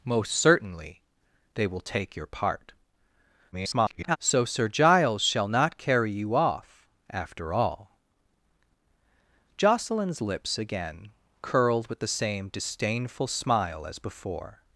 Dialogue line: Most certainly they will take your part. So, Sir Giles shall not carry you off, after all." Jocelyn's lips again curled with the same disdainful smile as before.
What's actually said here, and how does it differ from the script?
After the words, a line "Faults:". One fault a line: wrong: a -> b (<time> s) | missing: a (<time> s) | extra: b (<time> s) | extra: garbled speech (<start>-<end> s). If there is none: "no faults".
Most certainly they will take your part. [garbled] So, Sir Giles shall not carry you off, after all." Jocelyn's lips again curled with the same disdainful smile as before.
Faults:
extra: garbled speech (3.5-4.2 s)